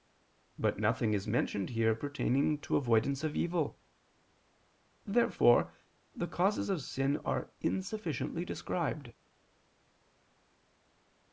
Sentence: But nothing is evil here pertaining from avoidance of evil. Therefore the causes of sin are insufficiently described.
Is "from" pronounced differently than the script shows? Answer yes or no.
yes